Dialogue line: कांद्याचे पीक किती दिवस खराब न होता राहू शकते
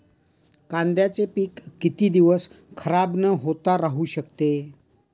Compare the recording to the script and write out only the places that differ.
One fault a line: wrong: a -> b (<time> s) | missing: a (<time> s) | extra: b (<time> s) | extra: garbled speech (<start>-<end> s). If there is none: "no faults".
no faults